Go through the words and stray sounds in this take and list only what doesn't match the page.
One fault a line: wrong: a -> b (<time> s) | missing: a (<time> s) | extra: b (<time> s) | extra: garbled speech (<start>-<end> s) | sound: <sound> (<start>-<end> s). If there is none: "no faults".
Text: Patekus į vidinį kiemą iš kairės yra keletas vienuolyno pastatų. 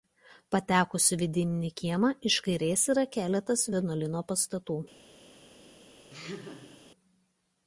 sound: laugh (6.1-6.8 s)